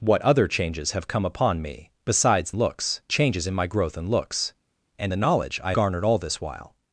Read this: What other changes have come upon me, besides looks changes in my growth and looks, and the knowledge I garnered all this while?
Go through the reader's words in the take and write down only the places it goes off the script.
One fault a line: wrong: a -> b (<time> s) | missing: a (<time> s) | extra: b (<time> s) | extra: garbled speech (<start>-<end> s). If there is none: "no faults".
no faults